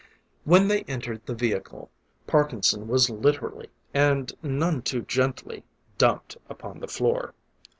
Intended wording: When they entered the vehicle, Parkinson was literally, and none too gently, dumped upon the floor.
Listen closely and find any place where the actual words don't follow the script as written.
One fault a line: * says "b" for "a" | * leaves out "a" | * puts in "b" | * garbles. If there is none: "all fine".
all fine